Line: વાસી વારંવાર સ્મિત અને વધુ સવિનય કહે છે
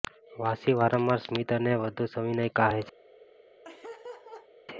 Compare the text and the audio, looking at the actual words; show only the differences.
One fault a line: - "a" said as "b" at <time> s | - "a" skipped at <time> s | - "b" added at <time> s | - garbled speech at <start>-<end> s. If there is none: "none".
none